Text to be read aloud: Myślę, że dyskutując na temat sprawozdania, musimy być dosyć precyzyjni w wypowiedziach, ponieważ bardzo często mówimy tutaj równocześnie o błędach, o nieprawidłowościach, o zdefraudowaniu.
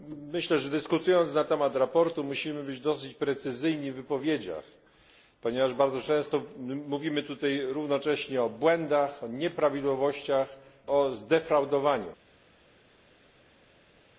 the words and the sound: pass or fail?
pass